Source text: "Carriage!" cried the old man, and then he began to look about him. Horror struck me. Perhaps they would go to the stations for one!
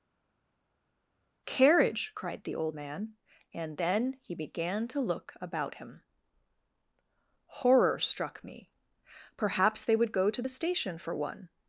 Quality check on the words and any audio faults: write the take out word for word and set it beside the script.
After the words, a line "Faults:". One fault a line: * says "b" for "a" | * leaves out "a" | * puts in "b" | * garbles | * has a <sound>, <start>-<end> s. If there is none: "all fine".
"Carriage!" cried the old man, and then he began to look about him. Horror struck me. Perhaps they would go to the station for one!
Faults:
* says "station" for "stations"